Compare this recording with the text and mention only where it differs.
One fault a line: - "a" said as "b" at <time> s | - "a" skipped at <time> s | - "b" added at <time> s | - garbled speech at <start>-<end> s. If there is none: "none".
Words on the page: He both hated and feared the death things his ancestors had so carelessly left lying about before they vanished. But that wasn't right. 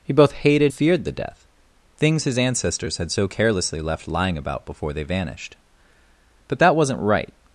- "and" skipped at 0.7 s